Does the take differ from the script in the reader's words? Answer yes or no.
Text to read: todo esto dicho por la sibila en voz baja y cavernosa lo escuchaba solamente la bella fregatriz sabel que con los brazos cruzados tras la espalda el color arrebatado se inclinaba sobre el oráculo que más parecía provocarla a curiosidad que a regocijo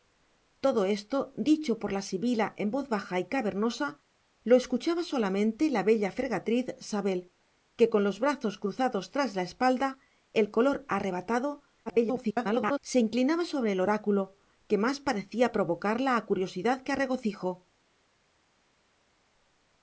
yes